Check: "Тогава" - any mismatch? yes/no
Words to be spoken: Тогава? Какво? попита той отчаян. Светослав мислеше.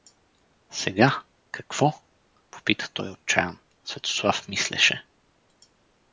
yes